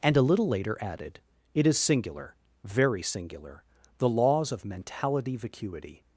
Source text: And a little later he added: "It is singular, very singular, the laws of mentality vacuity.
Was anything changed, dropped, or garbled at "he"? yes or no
yes